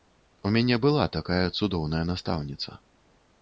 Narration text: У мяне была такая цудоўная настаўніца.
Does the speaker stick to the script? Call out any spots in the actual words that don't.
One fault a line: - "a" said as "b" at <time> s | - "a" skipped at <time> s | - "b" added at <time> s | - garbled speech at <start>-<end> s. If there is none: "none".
none